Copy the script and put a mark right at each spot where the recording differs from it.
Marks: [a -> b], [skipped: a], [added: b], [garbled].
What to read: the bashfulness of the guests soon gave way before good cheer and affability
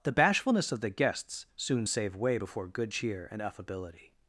the bashfulness of the guests soon [gave -> save] way before good cheer and affability